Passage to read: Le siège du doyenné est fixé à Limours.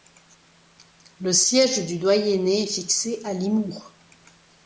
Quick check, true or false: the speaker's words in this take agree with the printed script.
true